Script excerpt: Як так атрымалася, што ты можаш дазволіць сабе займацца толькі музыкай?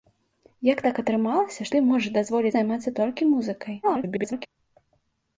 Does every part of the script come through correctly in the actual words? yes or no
no